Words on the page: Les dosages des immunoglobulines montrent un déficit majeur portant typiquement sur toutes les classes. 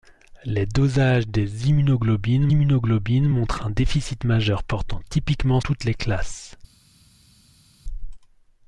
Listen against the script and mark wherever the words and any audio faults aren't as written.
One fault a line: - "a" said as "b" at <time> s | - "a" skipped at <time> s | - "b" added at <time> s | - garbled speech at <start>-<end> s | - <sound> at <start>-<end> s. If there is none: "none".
- "immunoglobulines" added at 2.5 s
- "sur" skipped at 5.6 s